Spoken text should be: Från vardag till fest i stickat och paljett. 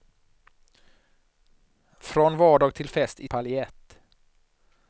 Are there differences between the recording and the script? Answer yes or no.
yes